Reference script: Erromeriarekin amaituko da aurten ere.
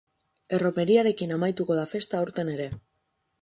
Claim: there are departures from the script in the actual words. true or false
true